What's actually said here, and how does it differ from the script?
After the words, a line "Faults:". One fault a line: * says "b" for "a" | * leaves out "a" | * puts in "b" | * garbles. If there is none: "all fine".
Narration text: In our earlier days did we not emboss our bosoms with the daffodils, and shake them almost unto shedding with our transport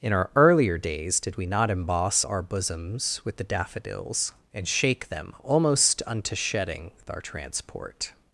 In our earlier days did we not emboss our bosoms with the daffodils, and shake them almost unto shedding with our transport
Faults:
all fine